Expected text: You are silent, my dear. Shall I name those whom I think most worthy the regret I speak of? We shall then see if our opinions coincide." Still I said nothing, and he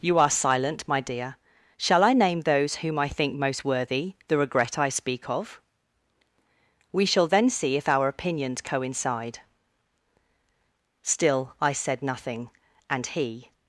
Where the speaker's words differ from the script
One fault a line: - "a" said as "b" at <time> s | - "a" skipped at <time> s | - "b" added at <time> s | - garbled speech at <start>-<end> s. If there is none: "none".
none